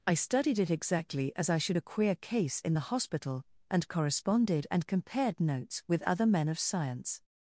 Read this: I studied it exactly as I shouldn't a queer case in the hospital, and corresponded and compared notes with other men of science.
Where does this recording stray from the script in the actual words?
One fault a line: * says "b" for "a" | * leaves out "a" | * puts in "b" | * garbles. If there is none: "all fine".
* says "should" for "shouldn't"